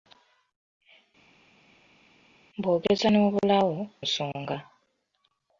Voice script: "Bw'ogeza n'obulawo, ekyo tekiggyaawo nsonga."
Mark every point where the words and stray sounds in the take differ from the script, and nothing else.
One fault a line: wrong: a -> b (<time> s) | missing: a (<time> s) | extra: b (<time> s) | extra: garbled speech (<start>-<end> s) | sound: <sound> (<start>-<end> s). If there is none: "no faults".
missing: ekyo tekiggyaawo (3.8 s)